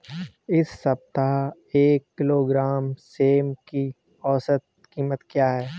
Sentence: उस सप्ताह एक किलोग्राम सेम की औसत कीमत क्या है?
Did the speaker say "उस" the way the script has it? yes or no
no